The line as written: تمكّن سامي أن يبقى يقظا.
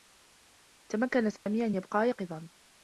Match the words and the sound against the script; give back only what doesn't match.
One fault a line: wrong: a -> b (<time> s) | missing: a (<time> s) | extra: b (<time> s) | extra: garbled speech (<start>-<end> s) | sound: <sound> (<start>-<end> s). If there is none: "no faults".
sound: dropout (1.4-1.5 s)